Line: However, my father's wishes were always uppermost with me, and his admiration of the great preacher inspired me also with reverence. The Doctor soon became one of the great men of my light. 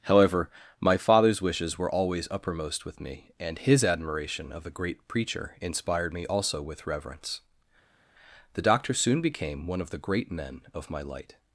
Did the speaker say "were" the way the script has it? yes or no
yes